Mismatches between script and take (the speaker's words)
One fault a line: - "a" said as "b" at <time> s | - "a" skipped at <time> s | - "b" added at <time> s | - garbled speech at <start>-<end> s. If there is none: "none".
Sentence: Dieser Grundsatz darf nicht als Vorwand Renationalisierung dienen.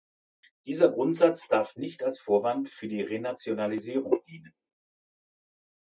- "für die" added at 2.7 s